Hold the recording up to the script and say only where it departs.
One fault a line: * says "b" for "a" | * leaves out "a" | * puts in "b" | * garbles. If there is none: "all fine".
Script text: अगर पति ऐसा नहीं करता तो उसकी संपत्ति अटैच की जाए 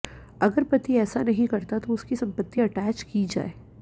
all fine